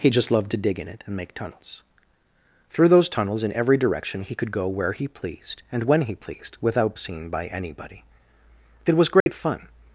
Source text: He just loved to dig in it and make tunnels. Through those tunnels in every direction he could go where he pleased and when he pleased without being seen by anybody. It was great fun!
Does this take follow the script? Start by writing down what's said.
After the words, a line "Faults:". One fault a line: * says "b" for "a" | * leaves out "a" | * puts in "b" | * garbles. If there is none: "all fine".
He just loved to dig in it and make tunnels. Through those tunnels in every direction he could go where he pleased and when he pleased without seen by anybody. It was great fun!
Faults:
* leaves out "being"